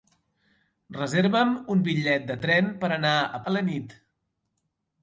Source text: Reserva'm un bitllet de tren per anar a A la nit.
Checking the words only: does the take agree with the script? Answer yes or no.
yes